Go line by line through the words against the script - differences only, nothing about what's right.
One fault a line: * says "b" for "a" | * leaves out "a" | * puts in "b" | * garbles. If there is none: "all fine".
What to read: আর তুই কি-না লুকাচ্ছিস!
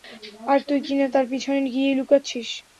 * puts in "তার পিছনে গিয়েই"